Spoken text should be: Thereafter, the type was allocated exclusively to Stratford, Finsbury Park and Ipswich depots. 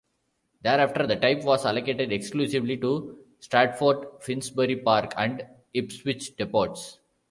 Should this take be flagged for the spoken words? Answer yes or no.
no